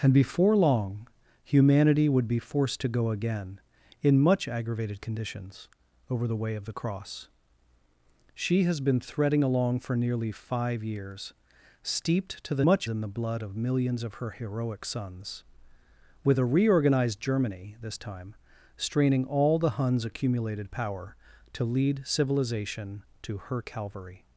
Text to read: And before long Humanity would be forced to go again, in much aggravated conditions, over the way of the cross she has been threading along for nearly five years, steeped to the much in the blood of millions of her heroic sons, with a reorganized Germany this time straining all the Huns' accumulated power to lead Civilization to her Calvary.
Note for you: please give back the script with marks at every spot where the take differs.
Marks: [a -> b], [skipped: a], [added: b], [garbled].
And before long Humanity would be forced to go again, in much aggravated conditions, over the way of the cross she has been threading along for nearly five years, steeped to the much in the blood of millions of her heroic sons, with a reorganized Germany this time straining all the Huns' accumulated power to lead Civilization to her Calvary.